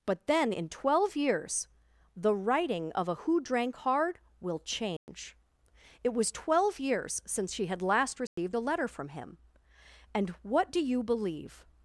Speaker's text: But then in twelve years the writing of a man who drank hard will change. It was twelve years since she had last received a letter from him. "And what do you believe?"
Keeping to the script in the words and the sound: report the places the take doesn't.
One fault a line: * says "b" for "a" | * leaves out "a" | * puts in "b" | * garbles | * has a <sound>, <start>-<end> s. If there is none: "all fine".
* leaves out "man"
* has a dropout, 5.0-5.1 s
* has a dropout, 8.3-8.4 s